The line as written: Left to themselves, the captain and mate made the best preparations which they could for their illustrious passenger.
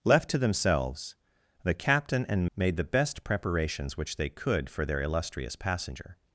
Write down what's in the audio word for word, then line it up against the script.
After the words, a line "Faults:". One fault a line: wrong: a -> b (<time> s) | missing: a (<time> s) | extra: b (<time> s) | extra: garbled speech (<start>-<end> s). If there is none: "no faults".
Left to themselves, the captain and made the best preparations which they could for their illustrious passenger.
Faults:
missing: mate (2.5 s)